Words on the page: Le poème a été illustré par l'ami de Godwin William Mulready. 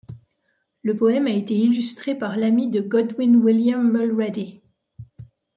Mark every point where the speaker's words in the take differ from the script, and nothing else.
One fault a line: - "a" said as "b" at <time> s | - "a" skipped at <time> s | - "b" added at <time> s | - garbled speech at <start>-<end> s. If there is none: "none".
none